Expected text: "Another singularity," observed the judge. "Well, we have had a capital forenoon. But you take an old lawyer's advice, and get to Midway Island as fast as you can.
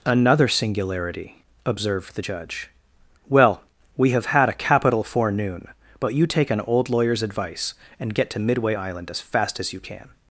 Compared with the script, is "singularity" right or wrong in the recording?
right